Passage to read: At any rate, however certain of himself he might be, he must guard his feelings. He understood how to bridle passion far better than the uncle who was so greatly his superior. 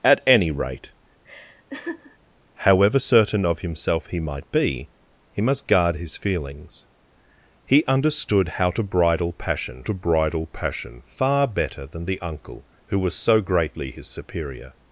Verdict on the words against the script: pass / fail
fail